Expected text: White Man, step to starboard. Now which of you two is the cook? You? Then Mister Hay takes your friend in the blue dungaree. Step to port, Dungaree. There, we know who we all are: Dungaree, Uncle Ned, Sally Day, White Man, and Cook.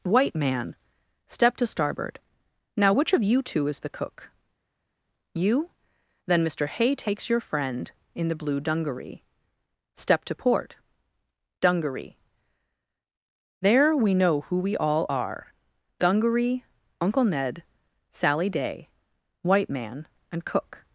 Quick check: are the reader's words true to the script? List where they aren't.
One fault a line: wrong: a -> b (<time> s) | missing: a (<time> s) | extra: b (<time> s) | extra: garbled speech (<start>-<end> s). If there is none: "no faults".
no faults